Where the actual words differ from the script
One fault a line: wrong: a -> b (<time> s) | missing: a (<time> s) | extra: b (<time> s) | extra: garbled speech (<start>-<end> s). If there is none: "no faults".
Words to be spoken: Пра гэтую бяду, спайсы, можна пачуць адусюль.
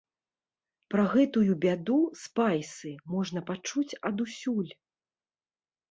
no faults